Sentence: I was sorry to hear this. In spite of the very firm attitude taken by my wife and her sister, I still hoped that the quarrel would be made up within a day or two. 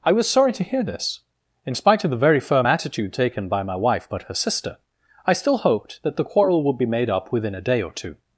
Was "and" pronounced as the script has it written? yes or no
no